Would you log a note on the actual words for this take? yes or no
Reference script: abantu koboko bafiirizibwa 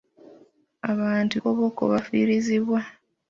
no